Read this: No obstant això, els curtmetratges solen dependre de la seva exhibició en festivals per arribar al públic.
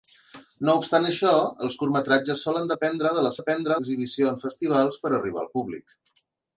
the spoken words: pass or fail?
fail